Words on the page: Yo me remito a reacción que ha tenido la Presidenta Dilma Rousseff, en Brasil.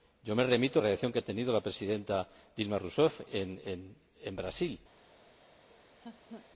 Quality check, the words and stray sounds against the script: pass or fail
fail